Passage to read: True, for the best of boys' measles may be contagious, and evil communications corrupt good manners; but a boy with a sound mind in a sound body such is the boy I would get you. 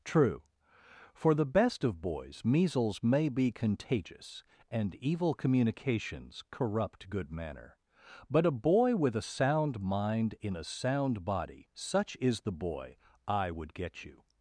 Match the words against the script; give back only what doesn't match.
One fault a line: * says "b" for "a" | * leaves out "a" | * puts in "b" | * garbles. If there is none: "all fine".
* says "manner" for "manners"